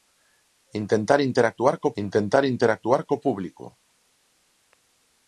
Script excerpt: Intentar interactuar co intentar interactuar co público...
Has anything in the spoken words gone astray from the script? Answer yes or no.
no